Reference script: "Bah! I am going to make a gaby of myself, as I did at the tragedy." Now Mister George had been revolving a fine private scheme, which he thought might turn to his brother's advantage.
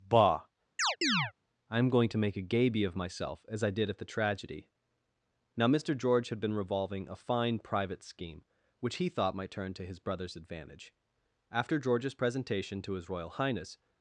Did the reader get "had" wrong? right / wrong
right